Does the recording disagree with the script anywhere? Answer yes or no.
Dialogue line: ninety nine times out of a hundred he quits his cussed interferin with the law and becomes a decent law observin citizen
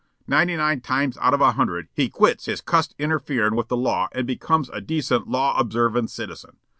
no